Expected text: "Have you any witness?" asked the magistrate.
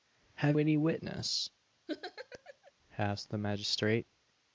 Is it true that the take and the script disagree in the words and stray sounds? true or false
true